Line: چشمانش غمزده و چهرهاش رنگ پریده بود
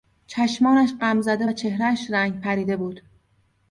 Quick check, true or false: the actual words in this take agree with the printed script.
true